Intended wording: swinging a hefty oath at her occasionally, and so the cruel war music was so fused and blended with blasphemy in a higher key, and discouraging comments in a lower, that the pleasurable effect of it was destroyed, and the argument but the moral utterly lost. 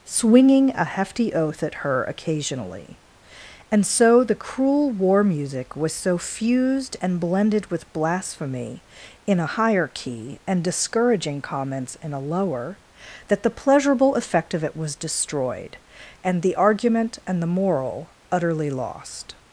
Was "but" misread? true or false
true